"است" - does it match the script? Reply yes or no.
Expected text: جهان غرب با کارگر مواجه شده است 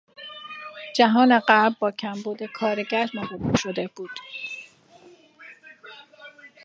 no